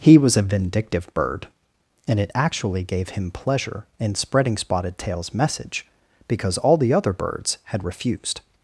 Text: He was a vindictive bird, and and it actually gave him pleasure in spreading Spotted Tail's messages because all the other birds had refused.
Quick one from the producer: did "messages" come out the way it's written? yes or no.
no